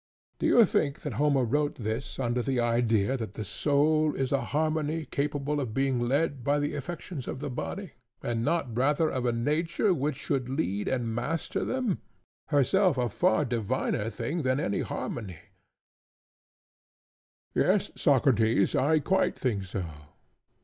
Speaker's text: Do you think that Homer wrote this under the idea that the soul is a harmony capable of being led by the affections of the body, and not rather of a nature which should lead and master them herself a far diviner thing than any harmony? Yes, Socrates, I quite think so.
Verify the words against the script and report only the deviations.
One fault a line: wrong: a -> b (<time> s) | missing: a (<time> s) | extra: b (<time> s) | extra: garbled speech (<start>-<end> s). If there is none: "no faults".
no faults